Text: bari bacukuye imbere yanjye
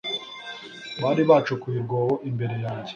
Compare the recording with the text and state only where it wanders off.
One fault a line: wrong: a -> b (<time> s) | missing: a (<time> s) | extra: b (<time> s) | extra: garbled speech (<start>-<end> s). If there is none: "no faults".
extra: urwobo (1.8 s)